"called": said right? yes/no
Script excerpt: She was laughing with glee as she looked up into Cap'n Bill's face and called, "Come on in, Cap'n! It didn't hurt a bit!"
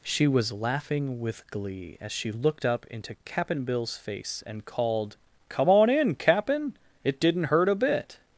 yes